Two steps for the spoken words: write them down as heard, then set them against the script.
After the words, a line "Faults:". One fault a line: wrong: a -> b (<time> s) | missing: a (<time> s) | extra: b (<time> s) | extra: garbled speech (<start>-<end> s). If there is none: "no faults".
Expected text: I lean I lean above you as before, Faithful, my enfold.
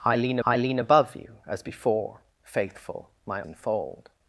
I lean I lean above you as before, Faithful, my enfold.
Faults:
no faults